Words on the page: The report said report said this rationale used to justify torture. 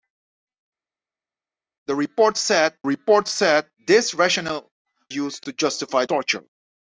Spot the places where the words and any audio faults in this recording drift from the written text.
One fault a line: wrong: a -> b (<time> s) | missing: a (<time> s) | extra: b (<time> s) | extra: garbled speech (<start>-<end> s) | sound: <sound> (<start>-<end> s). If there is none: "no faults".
no faults